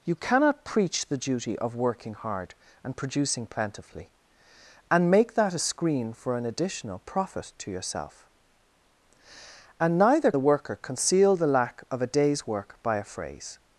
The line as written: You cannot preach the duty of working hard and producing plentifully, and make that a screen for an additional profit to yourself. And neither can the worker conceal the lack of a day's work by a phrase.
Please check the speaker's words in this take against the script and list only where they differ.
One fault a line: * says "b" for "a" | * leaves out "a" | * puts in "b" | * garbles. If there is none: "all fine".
* leaves out "can"